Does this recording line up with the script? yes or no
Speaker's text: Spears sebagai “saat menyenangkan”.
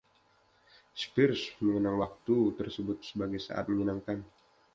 no